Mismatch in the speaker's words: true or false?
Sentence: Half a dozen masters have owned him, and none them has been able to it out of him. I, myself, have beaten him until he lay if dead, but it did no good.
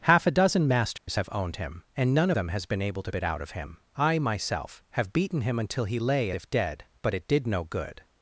false